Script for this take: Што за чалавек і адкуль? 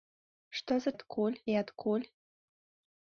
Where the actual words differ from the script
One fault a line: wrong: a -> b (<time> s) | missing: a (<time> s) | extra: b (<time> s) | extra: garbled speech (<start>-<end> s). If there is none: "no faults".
wrong: чалавек -> адкуль (0.9 s)